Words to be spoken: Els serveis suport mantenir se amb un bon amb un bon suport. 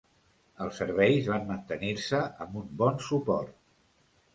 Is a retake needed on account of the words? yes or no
yes